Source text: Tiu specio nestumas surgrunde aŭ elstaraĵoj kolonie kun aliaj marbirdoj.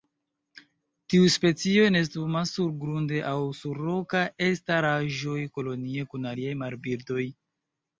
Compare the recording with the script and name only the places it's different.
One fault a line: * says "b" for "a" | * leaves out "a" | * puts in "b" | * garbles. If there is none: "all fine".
* puts in "sur rokaj"